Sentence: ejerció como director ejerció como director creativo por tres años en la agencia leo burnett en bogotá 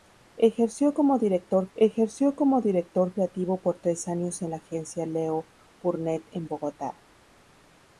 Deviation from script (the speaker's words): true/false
false